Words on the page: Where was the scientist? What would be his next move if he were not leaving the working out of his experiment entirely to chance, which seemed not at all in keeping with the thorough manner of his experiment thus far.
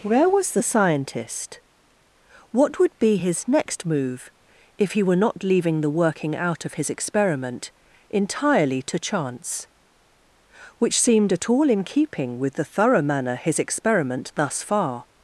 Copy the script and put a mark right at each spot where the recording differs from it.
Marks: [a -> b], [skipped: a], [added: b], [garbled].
Where was the scientist? What would be his next move if he were not leaving the working out of his experiment entirely to chance, which seemed [skipped: not] at all in keeping with the thorough manner [skipped: of] his experiment thus far.